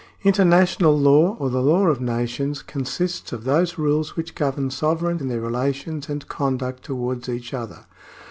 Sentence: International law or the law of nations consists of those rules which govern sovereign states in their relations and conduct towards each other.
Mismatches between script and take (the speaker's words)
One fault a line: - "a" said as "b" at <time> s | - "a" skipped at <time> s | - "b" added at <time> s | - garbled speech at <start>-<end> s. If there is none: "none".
- "states" skipped at 5.2 s